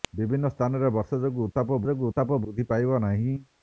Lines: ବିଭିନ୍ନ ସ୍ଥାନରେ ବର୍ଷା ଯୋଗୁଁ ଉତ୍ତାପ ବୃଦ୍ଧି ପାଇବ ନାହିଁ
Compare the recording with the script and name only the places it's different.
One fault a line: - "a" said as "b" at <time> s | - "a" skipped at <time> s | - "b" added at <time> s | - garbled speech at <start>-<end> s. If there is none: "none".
- "ଯୋଗୁଁ ଉତ୍ତାପ" added at 1.8 s